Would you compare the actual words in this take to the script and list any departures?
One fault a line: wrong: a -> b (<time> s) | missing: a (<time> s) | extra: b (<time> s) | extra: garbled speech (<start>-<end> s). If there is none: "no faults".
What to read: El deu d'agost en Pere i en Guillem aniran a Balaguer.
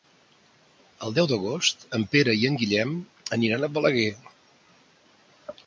no faults